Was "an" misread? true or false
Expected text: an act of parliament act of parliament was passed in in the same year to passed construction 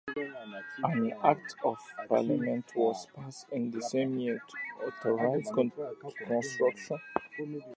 false